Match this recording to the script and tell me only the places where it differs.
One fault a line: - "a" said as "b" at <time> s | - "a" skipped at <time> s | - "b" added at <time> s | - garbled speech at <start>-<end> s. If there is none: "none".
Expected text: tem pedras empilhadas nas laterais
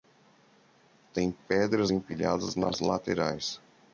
none